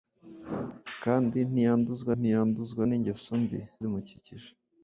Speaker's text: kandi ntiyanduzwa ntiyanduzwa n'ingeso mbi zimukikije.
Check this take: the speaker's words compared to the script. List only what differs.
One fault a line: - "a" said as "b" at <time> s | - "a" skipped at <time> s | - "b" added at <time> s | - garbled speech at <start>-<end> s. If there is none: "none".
none